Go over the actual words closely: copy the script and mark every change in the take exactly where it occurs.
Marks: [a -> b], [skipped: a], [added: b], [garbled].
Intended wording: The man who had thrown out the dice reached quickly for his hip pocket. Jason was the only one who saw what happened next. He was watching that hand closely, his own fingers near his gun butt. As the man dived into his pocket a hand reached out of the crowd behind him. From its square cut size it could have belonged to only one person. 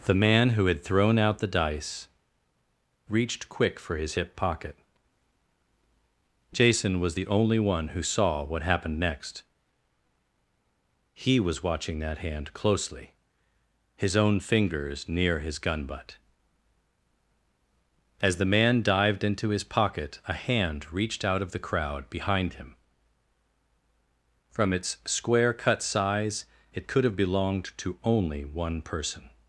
The man who had thrown out the dice reached [quickly -> quick] for his hip pocket. Jason was the only one who saw what happened next. He was watching that hand closely, his own fingers near his gun butt. As the man dived into his pocket a hand reached out of the crowd behind him. From its square cut size it could have belonged to only one person.